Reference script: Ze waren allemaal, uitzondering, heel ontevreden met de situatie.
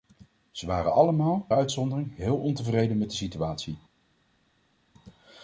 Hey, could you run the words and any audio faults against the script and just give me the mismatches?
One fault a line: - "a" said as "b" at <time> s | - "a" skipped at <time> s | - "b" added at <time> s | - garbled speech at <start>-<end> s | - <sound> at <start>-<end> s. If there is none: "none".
none